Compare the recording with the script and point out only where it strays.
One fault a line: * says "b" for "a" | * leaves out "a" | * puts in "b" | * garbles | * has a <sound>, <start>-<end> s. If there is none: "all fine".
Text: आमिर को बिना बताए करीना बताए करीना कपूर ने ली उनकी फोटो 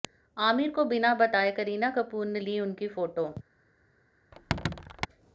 * leaves out "बताए करीना"
* has a squeak, 4.3-5.1 s